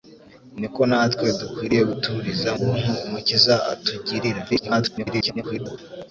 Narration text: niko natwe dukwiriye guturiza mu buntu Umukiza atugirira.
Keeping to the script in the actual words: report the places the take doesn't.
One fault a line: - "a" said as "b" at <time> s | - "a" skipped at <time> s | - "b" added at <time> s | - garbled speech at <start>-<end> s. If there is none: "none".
- "mu" skipped at 2.5 s
- garbled speech at 4.5-5.8 s